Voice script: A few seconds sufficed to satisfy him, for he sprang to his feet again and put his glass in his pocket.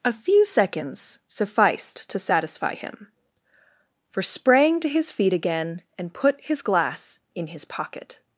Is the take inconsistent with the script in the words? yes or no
yes